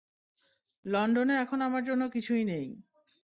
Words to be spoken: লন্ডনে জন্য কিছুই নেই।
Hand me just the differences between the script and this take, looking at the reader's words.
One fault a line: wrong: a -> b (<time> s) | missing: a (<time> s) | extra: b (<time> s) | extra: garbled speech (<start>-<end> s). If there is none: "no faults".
extra: এখন আমার (1.4 s)